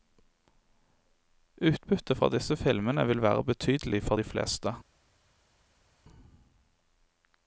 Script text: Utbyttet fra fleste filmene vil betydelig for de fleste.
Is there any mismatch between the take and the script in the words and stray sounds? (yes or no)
yes